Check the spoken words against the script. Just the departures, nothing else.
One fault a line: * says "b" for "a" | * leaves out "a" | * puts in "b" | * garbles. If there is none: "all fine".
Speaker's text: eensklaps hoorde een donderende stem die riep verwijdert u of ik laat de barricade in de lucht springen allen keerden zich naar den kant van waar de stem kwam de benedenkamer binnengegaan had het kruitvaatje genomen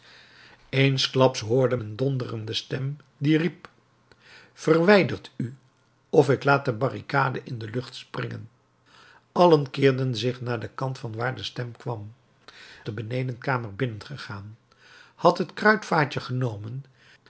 all fine